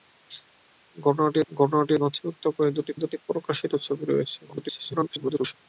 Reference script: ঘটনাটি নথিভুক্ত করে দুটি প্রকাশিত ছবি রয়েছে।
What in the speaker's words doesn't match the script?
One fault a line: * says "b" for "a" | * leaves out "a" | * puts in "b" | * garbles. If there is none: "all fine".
* puts in "ঘটনাটি"
* puts in "দুটি"
* garbles